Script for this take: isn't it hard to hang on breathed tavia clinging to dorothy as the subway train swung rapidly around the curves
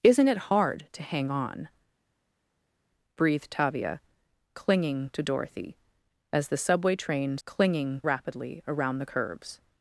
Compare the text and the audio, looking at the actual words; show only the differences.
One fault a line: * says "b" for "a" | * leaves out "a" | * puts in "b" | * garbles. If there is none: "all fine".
* says "clinging" for "swung"